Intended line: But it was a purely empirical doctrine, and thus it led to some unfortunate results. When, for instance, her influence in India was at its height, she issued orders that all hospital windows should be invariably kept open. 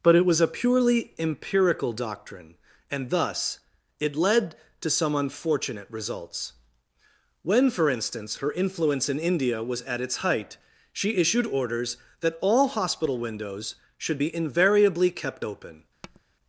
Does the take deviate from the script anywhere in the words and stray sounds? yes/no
yes